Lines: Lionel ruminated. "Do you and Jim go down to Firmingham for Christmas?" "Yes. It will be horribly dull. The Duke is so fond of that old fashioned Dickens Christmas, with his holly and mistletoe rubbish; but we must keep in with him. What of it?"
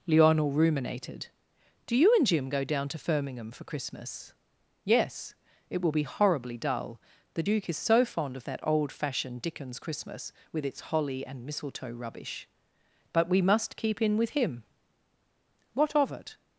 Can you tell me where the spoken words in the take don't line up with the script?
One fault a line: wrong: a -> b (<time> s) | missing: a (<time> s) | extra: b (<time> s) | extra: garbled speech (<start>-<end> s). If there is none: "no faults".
wrong: his -> its (10.6 s)